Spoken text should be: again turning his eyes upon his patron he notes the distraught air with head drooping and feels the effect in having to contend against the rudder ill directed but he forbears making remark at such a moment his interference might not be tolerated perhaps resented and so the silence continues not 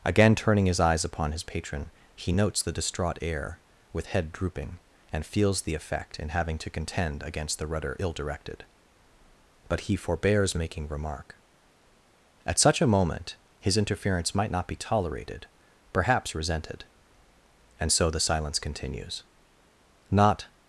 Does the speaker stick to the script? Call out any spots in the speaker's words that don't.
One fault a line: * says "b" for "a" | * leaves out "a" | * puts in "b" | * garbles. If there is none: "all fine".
all fine